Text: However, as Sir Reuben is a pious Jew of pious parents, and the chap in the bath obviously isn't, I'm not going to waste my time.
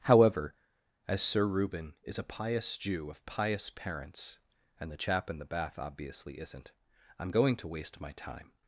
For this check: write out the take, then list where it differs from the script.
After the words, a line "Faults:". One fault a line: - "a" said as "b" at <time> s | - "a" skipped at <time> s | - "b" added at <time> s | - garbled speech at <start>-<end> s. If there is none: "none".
However, as Sir Reuben is a pious Jew of pious parents, and the chap in the bath obviously isn't, I'm going to waste my time.
Faults:
- "not" skipped at 7.3 s